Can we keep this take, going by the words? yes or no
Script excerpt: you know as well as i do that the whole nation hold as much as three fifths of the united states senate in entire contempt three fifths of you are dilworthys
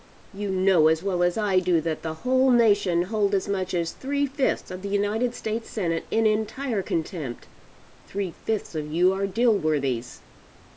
yes